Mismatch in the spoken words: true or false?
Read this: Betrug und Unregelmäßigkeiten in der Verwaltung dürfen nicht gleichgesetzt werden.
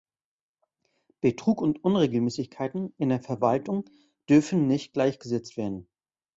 false